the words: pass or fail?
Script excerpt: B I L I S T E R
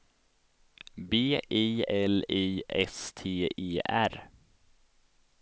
pass